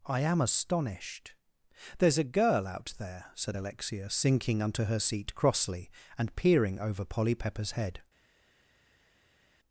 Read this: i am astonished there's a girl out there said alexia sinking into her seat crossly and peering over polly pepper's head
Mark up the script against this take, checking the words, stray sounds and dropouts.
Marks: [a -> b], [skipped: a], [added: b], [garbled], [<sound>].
i am astonished there's a girl out there said alexia sinking [into -> unto] her seat crossly and peering over polly pepper's head